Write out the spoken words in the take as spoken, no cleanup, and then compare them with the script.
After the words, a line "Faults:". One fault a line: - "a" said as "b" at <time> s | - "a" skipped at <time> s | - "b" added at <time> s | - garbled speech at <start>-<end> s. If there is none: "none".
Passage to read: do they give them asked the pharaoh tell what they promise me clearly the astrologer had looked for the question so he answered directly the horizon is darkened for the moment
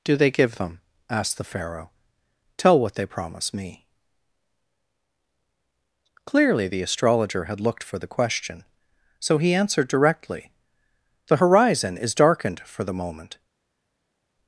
do they give them asked the pharaoh tell what they promise me clearly the astrologer had looked for the question so he answered directly the horizon is darkened for the moment
Faults:
none